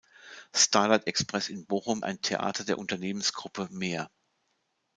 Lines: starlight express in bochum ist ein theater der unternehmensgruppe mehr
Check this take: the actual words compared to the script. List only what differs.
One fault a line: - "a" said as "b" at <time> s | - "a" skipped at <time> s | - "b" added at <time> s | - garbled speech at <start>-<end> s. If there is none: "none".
- "ist" skipped at 2.0 s